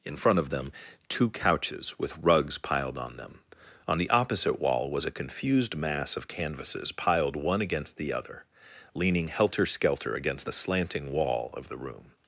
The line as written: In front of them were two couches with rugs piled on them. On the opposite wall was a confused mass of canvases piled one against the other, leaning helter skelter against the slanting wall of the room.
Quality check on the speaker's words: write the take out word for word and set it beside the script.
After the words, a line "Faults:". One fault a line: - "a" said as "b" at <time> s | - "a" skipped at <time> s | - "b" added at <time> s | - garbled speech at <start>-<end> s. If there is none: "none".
In front of them two couches with rugs piled on them. On the opposite wall was a confused mass of canvases piled one against the other, leaning helter skelter against the slanting wall of the room.
Faults:
- "were" skipped at 0.7 s